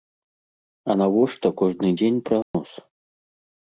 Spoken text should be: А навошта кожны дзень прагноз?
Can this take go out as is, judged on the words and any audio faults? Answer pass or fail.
fail